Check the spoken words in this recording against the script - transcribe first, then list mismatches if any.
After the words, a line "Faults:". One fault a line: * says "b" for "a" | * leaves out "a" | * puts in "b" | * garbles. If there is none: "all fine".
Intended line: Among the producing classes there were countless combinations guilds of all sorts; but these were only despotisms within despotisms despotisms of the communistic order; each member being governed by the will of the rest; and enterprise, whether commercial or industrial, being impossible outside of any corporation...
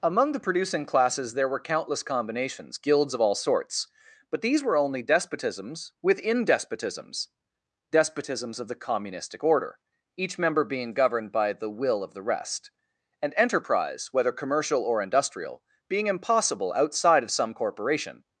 Among the producing classes there were countless combinations guilds of all sorts; but these were only despotisms within despotisms despotisms of the communistic order; each member being governed by the will of the rest; and enterprise, whether commercial or industrial, being impossible outside of some corporation...
Faults:
* says "some" for "any"